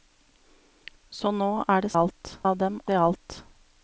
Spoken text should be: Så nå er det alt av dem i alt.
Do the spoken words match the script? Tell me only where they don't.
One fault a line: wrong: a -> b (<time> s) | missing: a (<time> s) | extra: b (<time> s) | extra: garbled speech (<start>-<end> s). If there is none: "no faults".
no faults